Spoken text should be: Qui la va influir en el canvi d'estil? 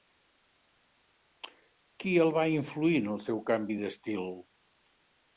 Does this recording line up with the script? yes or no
no